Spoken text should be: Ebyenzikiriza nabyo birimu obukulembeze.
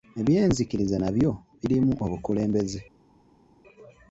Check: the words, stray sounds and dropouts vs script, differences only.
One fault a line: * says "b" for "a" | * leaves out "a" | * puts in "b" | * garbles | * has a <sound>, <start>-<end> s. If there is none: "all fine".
all fine